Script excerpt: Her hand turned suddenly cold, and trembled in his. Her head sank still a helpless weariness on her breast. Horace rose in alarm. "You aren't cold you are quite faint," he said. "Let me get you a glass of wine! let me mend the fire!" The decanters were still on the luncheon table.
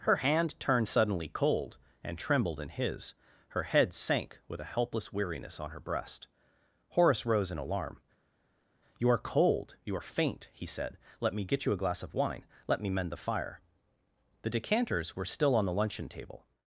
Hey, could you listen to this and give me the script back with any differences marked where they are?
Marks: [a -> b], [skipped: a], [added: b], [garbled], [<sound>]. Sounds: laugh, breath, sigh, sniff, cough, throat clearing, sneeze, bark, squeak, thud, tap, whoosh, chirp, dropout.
Her hand turned suddenly cold, and trembled in his. Her head sank [still -> with] a helpless weariness on her breast. Horace rose in alarm. "You [aren't -> are] cold you are [skipped: quite] faint," he said. "Let me get you a glass of wine! let me mend the fire!" The decanters were still on the luncheon table.